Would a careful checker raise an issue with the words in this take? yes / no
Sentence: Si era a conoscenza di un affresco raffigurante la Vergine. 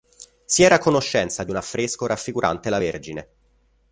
no